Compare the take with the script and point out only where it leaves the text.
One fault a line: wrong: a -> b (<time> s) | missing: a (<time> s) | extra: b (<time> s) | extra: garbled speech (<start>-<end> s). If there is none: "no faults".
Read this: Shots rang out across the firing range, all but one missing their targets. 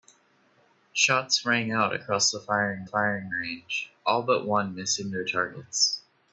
extra: firing (2.8 s)